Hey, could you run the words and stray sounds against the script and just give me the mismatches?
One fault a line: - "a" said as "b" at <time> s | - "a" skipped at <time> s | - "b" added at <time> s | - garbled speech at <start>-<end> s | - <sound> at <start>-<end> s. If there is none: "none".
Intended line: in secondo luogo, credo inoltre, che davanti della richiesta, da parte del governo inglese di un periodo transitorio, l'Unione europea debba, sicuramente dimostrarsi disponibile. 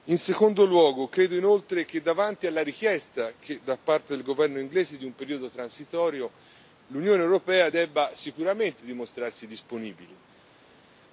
- "della" said as "alla" at 2.5 s